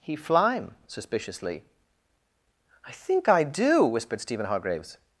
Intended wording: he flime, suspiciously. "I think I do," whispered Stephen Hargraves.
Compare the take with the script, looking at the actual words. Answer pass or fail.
pass